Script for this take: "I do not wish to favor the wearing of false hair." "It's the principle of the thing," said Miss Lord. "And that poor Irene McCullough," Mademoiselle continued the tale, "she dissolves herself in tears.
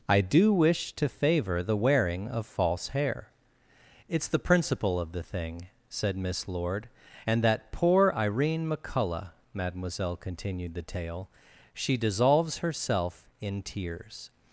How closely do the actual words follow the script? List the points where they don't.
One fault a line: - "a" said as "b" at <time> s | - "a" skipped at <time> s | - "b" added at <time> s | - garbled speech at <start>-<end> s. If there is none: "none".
- "not" skipped at 0.5 s